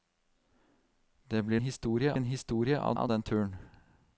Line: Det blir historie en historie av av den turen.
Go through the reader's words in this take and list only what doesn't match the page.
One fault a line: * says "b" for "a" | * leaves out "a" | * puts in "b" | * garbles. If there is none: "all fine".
all fine